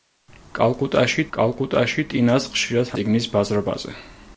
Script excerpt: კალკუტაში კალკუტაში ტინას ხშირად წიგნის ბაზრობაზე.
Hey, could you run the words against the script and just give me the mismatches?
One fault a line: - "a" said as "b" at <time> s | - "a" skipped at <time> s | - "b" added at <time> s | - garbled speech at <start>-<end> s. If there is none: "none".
none